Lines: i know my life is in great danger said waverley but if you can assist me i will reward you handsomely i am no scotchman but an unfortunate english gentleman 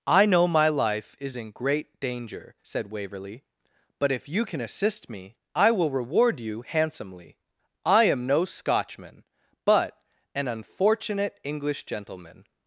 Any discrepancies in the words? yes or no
no